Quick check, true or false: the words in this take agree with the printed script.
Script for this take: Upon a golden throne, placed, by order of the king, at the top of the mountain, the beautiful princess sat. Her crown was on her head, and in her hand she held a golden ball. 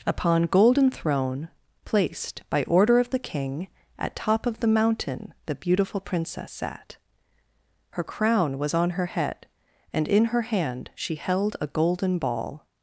false